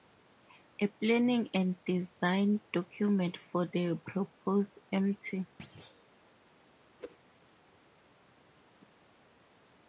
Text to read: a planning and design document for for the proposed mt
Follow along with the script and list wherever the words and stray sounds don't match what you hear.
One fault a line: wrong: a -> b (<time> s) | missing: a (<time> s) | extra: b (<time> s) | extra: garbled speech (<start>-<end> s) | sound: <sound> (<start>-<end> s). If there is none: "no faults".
missing: for (3.6 s)
sound: thud (5.6-6.2 s)
sound: whoosh (7.0-7.2 s)